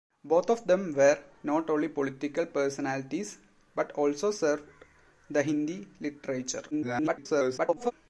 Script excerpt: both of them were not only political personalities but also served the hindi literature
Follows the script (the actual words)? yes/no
no